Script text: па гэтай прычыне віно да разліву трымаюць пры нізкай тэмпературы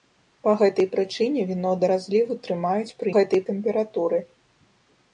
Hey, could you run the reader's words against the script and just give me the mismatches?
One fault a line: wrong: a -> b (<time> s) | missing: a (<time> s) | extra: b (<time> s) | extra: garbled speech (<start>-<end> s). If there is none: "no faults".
wrong: нізкай -> гэтай (3.1 s)